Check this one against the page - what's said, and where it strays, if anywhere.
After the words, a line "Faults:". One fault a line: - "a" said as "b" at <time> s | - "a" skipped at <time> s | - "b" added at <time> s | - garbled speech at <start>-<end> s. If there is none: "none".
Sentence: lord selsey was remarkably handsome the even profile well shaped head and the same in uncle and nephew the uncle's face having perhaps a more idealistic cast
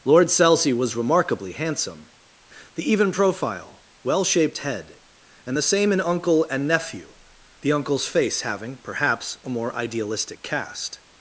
lord selsey was remarkably handsome the even profile well shaped head and the same in uncle and nephew the uncle's face having perhaps a more idealistic cast
Faults:
none